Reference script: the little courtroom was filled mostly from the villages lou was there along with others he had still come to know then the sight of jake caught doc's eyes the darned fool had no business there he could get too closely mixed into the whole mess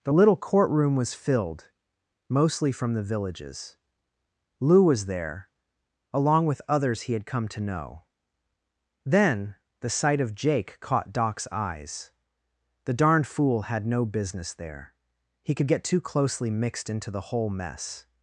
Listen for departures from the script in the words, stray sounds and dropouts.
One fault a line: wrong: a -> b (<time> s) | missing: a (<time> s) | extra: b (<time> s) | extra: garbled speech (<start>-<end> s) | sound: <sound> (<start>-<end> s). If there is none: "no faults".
missing: still (7.3 s)